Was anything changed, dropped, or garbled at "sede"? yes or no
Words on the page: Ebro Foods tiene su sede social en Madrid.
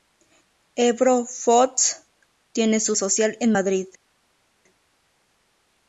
yes